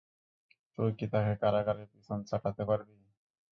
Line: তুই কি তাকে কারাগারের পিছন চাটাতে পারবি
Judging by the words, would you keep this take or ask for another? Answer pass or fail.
pass